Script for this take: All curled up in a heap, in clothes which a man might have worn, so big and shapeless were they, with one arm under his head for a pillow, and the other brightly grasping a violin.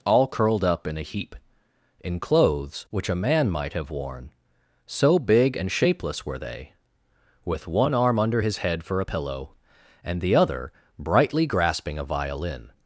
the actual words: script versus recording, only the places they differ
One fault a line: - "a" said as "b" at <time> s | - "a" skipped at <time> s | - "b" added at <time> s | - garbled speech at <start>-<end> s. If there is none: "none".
none